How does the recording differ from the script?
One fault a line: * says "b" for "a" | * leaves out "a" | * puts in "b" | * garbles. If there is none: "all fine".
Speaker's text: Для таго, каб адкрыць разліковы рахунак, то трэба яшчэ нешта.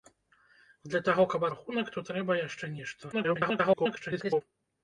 * leaves out "адкрыць разліковы"
* garbles